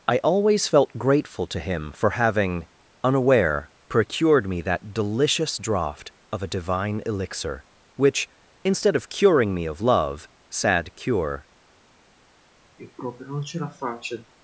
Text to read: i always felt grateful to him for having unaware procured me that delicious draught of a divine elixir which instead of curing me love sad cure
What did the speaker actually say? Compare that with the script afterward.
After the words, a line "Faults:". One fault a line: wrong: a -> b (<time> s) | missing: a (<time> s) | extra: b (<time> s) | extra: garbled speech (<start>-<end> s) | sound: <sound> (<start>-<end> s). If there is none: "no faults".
i always felt grateful to him for having unaware procured me that delicious draught of a divine elixir which instead of curing me of love sad cure
Faults:
extra: of (9.7 s)
sound: sigh (12.8-14.3 s)